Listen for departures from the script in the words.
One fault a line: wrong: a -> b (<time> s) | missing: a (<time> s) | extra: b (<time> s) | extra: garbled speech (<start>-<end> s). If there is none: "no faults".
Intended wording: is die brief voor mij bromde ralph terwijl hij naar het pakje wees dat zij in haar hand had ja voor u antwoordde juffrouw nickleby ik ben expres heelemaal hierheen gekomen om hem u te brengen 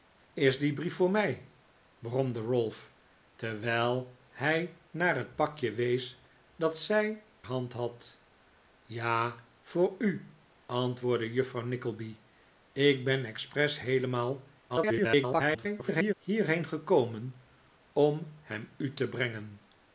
missing: in haar (7.2 s)
extra: garbled speech (14.7-16.1 s)